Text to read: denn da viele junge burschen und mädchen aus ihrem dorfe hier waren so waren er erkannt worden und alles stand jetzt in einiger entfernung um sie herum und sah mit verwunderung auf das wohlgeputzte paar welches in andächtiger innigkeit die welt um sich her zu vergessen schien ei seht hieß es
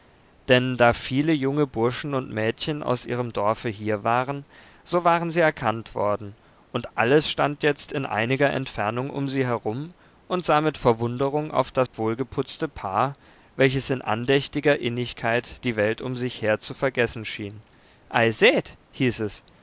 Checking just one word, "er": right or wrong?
wrong